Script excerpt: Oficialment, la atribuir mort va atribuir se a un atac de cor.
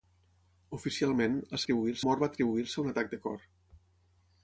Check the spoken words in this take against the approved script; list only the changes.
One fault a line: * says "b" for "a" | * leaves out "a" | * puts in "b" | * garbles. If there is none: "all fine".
all fine